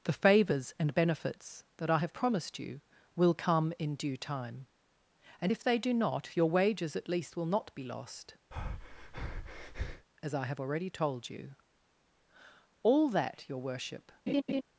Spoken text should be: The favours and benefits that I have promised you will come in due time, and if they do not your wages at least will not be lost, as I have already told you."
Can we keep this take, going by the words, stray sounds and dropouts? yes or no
no